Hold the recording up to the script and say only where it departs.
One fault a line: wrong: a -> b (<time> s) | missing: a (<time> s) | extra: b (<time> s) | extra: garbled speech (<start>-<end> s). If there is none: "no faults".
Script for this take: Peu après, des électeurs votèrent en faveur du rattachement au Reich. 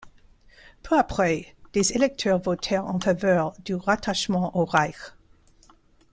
no faults